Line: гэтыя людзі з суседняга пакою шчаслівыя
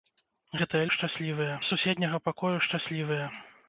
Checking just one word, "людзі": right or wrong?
wrong